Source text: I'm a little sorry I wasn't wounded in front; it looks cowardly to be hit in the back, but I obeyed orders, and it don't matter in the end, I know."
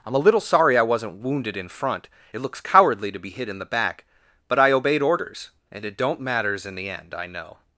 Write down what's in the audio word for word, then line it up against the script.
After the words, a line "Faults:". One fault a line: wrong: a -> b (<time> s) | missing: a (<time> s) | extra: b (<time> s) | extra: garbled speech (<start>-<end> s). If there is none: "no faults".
I'm a little sorry I wasn't wounded in front; it looks cowardly to be hit in the back, but I obeyed orders, and it don't matters in the end, I know."
Faults:
wrong: matter -> matters (6.2 s)